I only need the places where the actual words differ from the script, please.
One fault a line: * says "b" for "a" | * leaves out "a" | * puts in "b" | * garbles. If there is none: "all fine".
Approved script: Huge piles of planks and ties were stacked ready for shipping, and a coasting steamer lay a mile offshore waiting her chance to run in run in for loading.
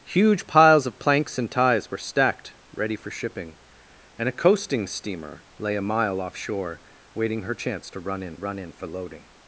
all fine